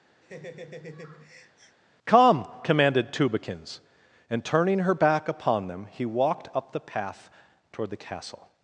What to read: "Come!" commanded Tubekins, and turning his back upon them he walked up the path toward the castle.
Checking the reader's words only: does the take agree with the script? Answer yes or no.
no